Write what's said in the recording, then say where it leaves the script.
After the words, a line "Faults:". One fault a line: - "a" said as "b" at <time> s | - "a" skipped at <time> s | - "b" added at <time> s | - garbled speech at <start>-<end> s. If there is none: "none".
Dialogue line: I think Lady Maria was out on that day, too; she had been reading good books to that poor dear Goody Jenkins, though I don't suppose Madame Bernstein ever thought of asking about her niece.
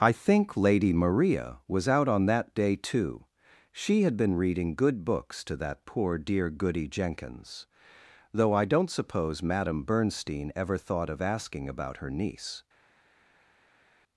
I think Lady Maria was out on that day, too; she had been reading good books to that poor dear Goody Jenkins, though I don't suppose Madame Bernstein ever thought of asking about her niece.
Faults:
none